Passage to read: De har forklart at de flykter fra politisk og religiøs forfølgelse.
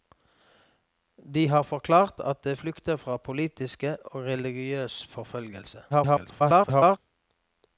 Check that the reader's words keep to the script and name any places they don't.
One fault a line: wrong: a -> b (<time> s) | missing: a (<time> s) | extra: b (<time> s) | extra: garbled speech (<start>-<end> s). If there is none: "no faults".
extra: garbled speech (5.9-7.0 s)